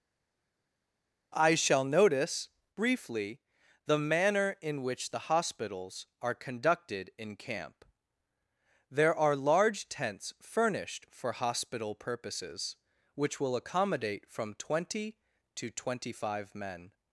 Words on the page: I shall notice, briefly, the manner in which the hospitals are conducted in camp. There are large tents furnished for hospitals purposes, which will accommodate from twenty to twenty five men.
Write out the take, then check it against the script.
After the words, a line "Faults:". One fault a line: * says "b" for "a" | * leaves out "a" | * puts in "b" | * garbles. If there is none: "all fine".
I shall notice, briefly, the manner in which the hospitals are conducted in camp. There are large tents furnished for hospital purposes, which will accommodate from twenty to twenty five men.
Faults:
* says "hospital" for "hospitals"